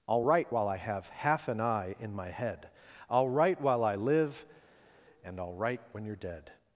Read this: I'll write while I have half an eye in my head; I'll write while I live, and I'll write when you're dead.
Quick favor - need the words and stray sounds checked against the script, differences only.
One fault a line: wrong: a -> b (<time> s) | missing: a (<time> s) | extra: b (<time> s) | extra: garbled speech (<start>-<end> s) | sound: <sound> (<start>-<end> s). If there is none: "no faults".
no faults